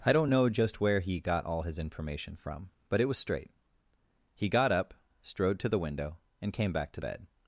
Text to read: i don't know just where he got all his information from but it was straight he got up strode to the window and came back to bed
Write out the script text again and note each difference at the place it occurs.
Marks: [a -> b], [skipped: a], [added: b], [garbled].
i don't know just where he got all his information from but it was straight he got up strode to the window and came back to bed